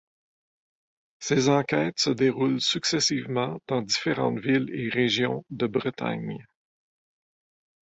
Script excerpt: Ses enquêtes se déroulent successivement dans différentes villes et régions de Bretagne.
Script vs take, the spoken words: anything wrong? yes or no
no